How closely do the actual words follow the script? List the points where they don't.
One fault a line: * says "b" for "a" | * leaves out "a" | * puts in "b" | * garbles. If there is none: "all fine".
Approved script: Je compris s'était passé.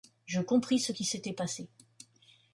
* puts in "ce qui"